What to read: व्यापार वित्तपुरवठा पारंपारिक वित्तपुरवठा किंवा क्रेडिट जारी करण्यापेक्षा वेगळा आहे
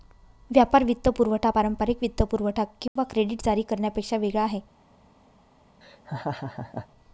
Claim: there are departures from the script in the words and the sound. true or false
true